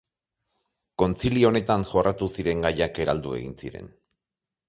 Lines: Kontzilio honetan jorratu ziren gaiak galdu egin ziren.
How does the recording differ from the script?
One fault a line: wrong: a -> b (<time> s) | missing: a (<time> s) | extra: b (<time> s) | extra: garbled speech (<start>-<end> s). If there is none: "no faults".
no faults